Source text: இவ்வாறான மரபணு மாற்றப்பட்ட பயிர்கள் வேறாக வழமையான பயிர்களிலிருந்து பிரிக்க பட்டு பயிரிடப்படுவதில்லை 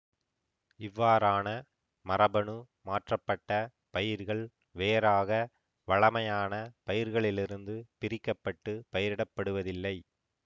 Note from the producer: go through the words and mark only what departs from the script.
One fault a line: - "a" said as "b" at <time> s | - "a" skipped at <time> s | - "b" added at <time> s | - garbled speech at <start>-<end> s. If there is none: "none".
none